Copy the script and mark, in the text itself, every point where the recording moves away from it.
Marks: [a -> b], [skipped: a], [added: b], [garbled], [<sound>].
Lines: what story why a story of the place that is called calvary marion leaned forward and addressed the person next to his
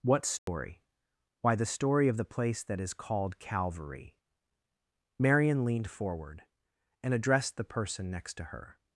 what story [dropout] why [a -> the] story of the place that is called calvary marion leaned forward and addressed the person next to [his -> her]